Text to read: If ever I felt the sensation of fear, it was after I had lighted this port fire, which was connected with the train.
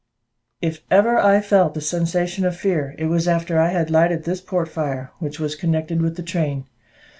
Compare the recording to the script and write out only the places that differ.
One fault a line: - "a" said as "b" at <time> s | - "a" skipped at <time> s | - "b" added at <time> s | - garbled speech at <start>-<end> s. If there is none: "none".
none